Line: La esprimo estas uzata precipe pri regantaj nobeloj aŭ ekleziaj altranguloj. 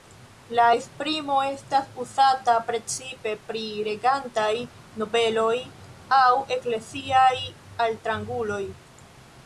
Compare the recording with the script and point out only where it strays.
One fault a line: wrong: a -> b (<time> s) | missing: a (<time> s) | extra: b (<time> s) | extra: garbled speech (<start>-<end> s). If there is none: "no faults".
no faults